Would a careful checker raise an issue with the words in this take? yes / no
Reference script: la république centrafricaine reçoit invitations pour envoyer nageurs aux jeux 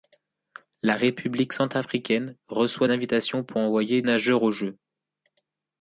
no